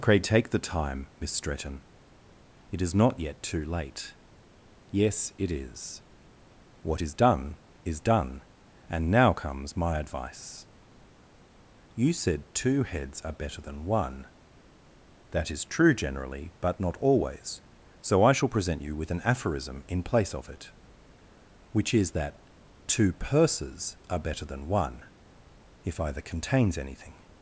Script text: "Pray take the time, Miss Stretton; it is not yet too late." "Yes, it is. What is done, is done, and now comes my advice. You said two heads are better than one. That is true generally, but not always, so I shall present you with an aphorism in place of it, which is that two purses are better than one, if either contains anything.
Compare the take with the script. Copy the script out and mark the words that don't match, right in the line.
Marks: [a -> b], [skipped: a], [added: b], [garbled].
"Pray take the time, Miss Stretton; it is not yet too late." "Yes, it is. What is done, is done, and now comes my advice. You said two heads are better than one. That is true generally, but not always, so I shall present you with an aphorism in place of it, which is that two purses are better than one, if either contains anything.